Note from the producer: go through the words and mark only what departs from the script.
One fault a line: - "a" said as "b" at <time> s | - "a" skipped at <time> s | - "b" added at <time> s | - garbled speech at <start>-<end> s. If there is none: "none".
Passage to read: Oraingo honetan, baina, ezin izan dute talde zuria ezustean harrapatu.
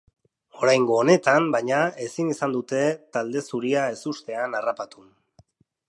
none